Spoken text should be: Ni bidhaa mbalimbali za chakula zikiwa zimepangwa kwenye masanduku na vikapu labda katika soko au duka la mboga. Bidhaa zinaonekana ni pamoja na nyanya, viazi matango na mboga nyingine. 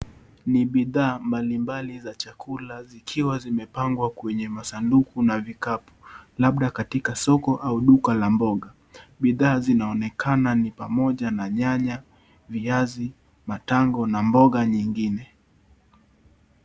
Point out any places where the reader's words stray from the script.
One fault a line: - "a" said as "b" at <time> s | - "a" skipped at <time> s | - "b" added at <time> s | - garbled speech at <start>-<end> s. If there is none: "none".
none